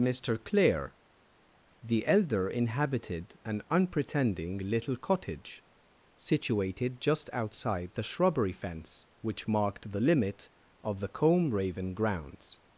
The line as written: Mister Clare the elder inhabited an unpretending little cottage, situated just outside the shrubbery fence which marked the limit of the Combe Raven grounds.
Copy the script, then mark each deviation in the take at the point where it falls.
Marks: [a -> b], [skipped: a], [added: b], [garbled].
Mister Clare the elder inhabited an unpretending little cottage, situated just outside the shrubbery fence which marked the limit of the Combe Raven grounds.